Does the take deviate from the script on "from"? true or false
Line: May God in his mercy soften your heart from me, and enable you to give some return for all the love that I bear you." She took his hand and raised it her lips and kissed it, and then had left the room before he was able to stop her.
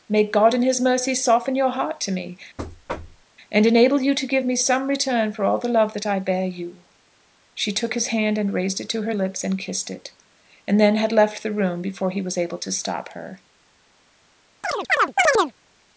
true